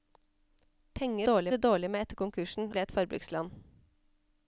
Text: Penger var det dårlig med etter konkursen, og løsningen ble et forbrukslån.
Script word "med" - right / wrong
right